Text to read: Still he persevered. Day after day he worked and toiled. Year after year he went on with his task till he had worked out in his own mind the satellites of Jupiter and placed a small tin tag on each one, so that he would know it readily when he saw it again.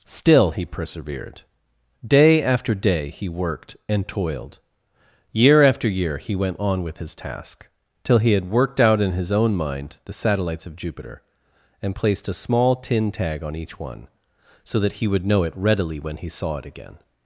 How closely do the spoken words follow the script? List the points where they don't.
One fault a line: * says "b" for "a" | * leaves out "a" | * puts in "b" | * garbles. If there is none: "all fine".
all fine